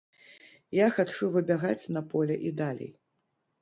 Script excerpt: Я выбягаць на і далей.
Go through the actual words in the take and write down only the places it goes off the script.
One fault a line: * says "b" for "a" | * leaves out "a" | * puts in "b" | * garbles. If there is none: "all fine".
* puts in "хачу"
* puts in "поле"